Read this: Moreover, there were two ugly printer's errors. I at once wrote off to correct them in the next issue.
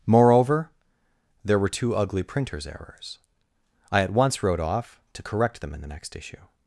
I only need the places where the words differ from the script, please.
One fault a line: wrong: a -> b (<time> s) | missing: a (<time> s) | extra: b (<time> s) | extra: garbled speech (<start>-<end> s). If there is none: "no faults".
no faults